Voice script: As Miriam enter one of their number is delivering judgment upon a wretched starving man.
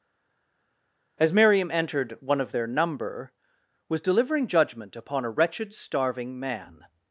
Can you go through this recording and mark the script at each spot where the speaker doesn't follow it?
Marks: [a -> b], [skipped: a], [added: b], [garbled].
As Miriam [enter -> entered] one of their number [is -> was] delivering judgment upon a wretched starving man.